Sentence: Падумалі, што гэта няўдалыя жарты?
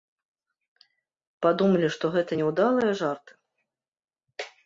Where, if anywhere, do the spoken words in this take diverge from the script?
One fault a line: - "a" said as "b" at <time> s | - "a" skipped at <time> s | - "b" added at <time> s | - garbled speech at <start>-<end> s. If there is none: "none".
none